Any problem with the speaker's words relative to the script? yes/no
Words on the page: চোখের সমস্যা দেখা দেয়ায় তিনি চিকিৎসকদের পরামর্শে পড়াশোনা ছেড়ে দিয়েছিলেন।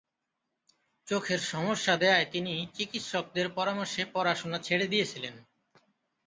yes